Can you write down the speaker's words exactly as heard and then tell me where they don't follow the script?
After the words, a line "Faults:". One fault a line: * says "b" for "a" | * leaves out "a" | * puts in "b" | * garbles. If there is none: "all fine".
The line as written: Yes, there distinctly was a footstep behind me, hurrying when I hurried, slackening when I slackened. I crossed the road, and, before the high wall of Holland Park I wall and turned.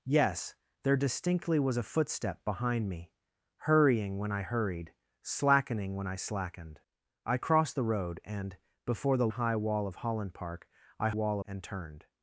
Yes, there distinctly was a footstep behind me, hurrying when I hurried, slackening when I slackened. I crossed the road, and, before the high wall of Holland Park I wall and turned.
Faults:
all fine